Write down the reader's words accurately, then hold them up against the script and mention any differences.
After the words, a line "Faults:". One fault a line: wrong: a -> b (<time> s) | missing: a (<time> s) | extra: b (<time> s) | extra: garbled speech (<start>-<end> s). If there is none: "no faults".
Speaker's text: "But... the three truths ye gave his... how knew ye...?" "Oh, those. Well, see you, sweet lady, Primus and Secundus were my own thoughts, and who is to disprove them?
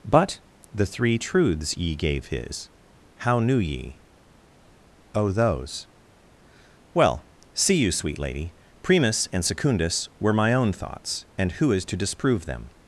"But... the three truths ye gave his... how knew ye...?" "Oh, those. Well, see you, sweet lady, Primus and Secundus were my own thoughts, and who is to disprove them?
Faults:
no faults